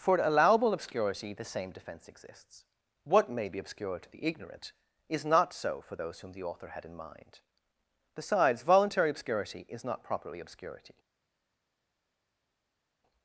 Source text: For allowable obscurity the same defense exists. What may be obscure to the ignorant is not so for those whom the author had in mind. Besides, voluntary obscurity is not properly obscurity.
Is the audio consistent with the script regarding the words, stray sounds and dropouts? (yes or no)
yes